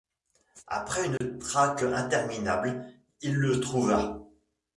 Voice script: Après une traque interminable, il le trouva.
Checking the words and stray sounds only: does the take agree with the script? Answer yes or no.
no